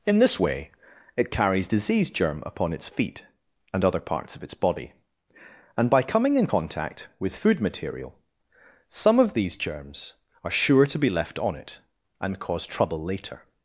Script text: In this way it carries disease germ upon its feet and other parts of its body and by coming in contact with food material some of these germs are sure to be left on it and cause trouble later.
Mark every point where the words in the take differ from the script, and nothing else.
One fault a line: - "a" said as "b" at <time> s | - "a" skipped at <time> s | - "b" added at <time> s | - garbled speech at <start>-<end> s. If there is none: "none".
none